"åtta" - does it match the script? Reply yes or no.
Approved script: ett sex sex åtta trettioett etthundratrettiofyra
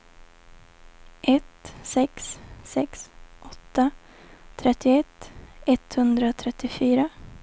yes